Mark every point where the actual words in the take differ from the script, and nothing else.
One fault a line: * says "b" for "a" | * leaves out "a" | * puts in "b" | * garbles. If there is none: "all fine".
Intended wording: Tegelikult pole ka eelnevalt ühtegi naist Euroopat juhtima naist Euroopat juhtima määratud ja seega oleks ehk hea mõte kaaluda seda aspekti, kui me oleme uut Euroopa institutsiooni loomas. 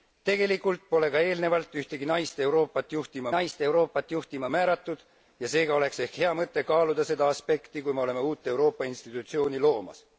all fine